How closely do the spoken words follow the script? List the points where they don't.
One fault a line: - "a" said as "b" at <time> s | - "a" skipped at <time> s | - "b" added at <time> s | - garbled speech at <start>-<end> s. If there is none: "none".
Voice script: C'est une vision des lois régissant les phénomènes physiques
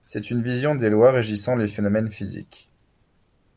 none